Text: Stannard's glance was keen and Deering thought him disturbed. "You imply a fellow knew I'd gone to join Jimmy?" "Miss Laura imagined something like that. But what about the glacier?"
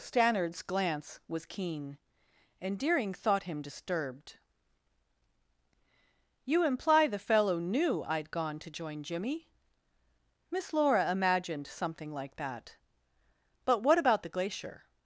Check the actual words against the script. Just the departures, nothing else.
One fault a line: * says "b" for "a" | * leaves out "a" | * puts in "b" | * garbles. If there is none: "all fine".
* says "the" for "a"